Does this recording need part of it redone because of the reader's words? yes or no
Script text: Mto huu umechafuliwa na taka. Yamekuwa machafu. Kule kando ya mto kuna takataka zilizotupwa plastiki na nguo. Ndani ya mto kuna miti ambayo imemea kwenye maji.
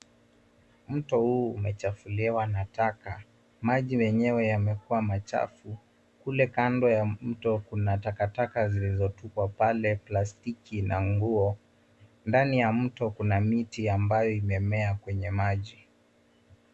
yes